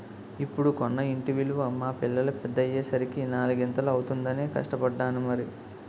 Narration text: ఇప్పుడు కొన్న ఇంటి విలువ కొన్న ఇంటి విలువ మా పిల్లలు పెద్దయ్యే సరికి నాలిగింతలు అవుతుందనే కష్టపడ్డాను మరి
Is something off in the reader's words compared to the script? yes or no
yes